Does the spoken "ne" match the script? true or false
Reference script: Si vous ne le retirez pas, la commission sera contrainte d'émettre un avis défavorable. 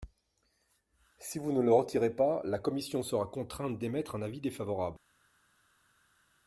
true